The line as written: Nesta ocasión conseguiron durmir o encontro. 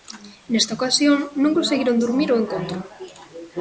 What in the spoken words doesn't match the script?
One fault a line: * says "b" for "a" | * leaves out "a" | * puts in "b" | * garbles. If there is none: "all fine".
* puts in "non"